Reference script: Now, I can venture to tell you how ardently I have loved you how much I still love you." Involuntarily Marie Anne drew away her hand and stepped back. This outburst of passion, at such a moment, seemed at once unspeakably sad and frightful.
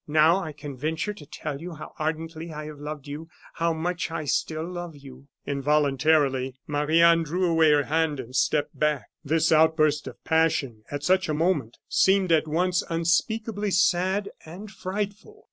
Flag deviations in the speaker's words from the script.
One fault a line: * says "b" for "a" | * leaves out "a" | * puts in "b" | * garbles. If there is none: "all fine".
all fine